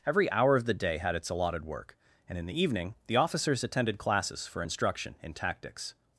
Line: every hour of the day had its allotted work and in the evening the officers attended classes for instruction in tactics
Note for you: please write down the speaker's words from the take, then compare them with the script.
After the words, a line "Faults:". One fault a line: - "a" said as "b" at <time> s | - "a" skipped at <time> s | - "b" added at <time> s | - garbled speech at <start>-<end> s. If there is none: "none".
every hour of the day had its allotted work and in the evening the officers attended classes for instruction in tactics
Faults:
none